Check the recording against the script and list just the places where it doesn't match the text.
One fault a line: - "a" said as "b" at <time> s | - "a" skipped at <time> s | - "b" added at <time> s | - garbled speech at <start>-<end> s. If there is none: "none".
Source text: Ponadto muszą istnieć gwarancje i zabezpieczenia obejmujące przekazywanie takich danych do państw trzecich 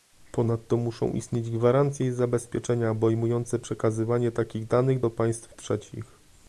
none